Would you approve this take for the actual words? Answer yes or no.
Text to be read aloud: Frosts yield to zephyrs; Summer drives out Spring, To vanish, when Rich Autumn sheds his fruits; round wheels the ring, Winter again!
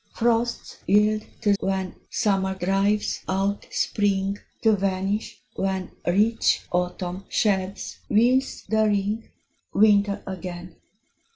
no